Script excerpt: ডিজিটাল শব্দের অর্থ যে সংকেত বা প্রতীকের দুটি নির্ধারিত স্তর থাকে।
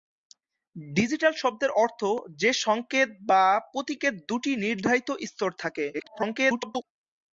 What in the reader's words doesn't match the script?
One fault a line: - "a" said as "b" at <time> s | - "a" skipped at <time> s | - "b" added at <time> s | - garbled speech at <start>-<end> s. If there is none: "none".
- garbled speech at 5.9-6.8 s